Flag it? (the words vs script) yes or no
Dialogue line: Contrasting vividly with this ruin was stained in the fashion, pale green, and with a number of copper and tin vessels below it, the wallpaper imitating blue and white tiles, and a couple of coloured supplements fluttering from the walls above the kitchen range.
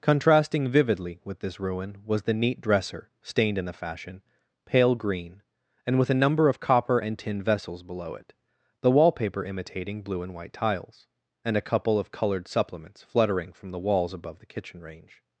yes